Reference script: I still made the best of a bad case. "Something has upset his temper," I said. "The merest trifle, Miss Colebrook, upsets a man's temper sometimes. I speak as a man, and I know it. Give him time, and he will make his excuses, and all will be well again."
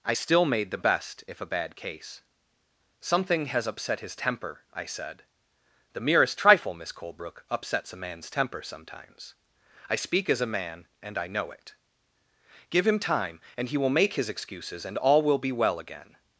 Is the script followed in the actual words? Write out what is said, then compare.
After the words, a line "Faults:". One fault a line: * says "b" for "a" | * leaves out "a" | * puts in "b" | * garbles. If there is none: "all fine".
I still made the best if a bad case. "Something has upset his temper," I said. "The merest trifle, Miss Colebrook, upsets a man's temper sometimes. I speak as a man, and I know it. Give him time, and he will make his excuses, and all will be well again."
Faults:
* says "if" for "of"